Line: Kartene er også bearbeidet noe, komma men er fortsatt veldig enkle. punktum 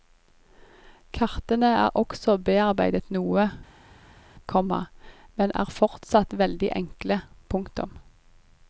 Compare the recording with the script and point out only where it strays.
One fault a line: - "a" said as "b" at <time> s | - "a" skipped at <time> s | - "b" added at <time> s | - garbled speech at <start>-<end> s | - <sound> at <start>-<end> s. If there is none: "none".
none